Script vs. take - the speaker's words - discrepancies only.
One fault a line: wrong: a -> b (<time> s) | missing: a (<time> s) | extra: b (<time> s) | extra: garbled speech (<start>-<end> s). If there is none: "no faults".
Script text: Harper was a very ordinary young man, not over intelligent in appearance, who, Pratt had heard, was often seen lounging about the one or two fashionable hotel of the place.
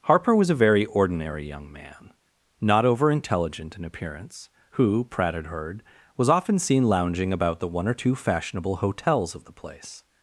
wrong: hotel -> hotels (8.8 s)